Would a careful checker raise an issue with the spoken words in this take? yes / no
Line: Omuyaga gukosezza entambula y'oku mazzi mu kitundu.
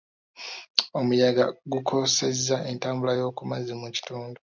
no